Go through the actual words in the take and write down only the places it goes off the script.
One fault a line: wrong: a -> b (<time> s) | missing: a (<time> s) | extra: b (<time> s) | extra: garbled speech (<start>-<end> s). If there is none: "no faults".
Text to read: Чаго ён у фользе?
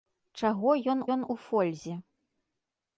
extra: ён (1.2 s)